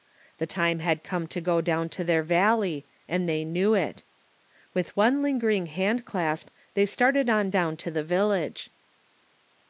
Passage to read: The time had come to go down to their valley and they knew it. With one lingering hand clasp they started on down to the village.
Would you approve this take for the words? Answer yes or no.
yes